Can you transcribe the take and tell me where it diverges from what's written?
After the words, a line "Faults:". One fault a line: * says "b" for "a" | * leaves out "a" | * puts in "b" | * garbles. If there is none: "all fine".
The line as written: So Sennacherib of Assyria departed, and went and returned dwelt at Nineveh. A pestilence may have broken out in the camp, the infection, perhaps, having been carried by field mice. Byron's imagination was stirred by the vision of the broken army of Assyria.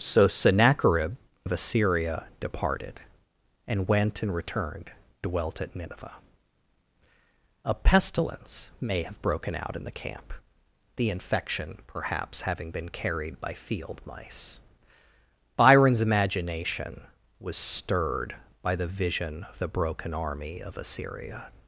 So Sennacherib of Assyria departed, and went and returned dwelt at Nineveh. A pestilence may have broken out in the camp, the infection, perhaps, having been carried by field mice. Byron's imagination was stirred by the vision of the broken army of Assyria.
Faults:
all fine